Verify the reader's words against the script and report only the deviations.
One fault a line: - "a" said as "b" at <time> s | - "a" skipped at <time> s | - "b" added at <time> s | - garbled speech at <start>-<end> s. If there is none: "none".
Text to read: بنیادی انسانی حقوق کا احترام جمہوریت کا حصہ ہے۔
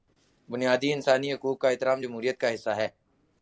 none